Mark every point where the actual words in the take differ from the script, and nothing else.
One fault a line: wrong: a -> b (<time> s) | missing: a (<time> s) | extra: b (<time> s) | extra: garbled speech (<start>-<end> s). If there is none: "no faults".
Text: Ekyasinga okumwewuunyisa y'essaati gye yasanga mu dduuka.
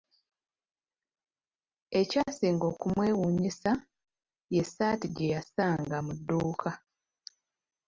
no faults